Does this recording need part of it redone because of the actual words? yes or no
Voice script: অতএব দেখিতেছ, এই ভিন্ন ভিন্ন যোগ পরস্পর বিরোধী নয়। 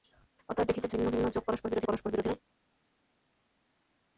yes